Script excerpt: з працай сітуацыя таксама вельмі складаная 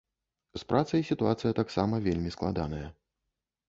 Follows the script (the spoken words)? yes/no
yes